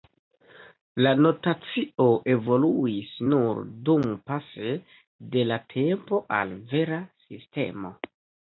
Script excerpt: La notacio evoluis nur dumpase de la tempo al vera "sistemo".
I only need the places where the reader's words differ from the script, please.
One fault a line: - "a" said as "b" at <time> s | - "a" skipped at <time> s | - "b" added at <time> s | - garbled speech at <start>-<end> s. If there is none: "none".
none